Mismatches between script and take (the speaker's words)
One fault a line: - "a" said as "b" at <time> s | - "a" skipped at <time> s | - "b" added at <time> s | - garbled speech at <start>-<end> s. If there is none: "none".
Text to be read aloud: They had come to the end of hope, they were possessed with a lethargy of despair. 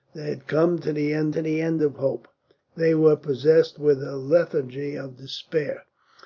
- "to the end" added at 1.3 s